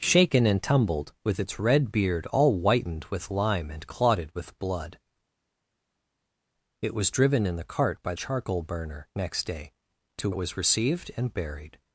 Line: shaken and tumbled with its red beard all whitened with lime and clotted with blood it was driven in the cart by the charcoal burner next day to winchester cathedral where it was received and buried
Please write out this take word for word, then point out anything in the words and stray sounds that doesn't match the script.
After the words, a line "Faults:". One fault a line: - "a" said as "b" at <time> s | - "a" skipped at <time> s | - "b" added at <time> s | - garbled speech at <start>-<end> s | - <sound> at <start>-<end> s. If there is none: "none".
shaken and tumbled with its red beard all whitened with lime and clotted with blood it was driven in the cart by charcoal burner next day to it was received and buried
Faults:
- "the" skipped at 8.1 s
- "winchester cathedral where" skipped at 10.3 s